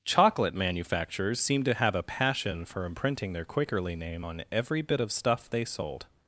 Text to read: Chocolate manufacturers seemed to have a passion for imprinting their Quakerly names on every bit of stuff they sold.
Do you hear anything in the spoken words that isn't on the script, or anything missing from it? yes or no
yes